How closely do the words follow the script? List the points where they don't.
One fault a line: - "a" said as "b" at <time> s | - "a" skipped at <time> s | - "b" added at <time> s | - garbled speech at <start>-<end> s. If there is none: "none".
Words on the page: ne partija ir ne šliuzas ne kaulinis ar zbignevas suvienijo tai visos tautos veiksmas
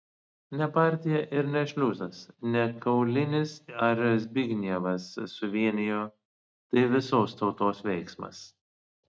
none